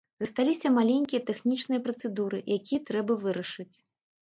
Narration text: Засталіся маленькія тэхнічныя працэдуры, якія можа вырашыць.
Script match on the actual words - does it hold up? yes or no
no